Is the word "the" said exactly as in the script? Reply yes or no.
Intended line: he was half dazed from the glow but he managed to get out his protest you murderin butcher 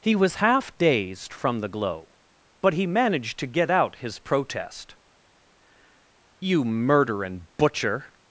yes